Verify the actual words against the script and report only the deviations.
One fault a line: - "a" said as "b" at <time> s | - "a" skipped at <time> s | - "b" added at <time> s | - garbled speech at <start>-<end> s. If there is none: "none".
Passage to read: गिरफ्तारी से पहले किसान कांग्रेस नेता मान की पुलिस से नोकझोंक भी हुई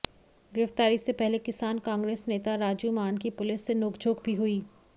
- "राजू" added at 2.6 s